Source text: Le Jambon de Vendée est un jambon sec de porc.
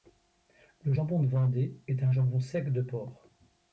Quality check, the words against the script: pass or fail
pass